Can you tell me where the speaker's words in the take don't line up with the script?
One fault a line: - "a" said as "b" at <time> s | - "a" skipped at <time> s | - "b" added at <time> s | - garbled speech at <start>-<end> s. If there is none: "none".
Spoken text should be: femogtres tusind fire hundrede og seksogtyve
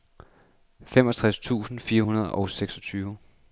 none